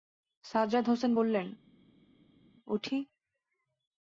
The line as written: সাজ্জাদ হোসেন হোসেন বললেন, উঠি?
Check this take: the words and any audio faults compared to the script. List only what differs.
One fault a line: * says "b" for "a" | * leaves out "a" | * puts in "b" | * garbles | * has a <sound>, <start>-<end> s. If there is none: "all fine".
* leaves out "হোসেন"